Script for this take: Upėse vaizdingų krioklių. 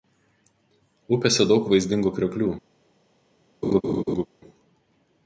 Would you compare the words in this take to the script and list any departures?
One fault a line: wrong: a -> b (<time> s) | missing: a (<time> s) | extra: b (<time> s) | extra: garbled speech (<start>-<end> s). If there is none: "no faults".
extra: daug (1.5 s)